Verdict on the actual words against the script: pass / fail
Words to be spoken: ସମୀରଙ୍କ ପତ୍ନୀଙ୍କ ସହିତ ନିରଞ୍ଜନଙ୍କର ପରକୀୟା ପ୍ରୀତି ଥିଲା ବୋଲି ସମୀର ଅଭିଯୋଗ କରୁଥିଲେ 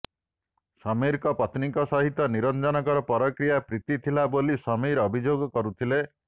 pass